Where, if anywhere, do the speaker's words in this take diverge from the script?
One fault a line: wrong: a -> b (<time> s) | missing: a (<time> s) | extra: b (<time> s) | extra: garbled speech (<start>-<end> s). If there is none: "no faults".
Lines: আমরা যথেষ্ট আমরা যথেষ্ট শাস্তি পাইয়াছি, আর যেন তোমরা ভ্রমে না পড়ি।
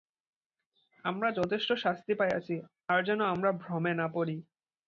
missing: আমরা যথেষ্ট (1.7 s)
wrong: তোমরা -> আমরা (3.2 s)